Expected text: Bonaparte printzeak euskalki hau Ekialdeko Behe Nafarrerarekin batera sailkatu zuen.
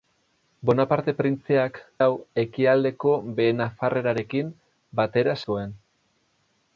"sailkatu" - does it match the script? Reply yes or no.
no